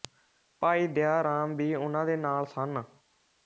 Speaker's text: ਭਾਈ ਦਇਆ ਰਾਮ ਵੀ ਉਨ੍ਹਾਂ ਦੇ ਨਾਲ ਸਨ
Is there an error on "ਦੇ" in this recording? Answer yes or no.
no